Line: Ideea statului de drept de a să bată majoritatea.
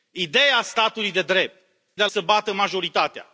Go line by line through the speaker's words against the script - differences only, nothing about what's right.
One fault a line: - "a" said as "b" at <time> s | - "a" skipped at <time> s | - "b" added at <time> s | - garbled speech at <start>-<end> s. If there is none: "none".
none